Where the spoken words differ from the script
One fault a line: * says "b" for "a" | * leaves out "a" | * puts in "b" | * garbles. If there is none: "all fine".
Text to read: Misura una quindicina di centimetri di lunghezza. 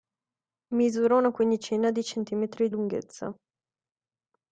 * leaves out "di"